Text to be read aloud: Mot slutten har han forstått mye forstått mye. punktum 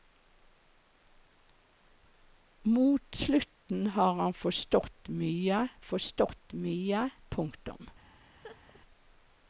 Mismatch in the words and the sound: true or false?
true